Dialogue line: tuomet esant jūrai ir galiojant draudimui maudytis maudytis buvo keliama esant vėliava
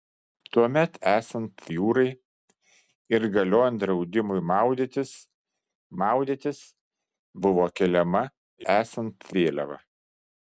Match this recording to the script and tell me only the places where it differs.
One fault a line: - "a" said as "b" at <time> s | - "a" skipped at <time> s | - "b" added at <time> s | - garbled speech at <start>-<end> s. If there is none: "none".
none